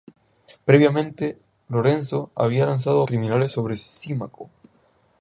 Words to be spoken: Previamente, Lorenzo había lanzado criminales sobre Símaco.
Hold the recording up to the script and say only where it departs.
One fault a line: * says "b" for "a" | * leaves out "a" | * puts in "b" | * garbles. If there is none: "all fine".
all fine